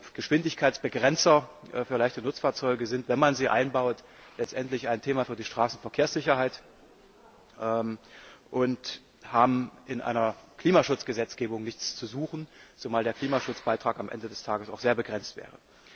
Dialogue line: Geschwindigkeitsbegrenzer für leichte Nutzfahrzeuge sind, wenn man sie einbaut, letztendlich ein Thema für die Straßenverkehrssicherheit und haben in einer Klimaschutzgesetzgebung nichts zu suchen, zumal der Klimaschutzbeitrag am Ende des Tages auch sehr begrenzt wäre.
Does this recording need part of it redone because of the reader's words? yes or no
no